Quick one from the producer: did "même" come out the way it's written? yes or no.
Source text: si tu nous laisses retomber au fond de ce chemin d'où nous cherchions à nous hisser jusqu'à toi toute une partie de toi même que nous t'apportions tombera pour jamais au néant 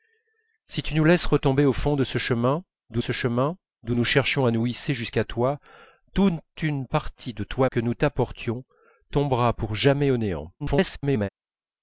no